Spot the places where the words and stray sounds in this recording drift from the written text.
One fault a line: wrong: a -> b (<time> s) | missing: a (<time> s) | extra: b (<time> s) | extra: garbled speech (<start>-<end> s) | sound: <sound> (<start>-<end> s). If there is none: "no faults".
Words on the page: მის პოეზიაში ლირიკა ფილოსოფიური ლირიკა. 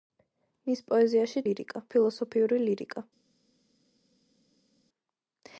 no faults